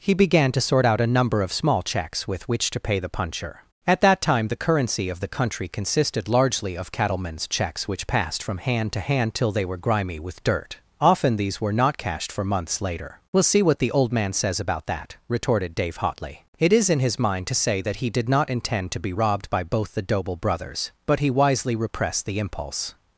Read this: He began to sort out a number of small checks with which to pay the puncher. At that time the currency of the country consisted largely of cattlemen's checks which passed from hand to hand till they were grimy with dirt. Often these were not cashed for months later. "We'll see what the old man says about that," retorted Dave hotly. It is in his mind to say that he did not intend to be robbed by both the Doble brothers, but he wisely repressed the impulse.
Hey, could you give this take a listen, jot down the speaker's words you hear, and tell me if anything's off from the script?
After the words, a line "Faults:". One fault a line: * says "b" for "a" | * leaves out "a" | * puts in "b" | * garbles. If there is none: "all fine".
He began to sort out a number of small checks with which to pay the puncher. At that time the currency of the country consisted largely of cattlemen's checks which passed from hand to hand till they were grimy with dirt. Often these were not cashed for months later. "We'll see what the old man says about that," retorted Dave hotly. It is in his mind to say that he did not intend to be robbed by both the Doble brothers, but he wisely repressed the impulse.
Faults:
all fine